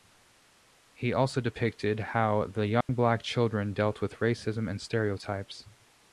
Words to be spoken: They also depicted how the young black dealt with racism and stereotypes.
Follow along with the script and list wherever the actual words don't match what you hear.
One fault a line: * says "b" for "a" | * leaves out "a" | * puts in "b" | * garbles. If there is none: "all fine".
* says "He" for "They"
* puts in "children"